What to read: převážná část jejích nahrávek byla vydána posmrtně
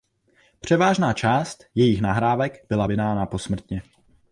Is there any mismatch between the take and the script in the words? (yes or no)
no